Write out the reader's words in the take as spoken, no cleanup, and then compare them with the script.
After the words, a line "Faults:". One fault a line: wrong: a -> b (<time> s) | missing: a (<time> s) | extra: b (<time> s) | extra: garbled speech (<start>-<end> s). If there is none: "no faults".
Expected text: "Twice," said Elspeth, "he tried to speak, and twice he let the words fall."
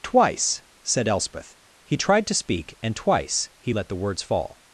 "Twice," said Elspeth, "he tried to speak, and twice he let the words fall."
Faults:
no faults